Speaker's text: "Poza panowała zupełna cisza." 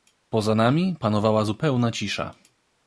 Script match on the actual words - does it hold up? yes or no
no